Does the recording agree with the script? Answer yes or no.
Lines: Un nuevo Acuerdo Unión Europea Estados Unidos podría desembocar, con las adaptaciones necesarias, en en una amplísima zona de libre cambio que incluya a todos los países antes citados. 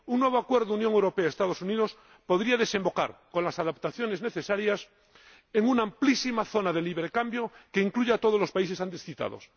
no